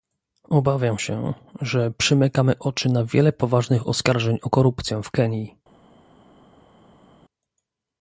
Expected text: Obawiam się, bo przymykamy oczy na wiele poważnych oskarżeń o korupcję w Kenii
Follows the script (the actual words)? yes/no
no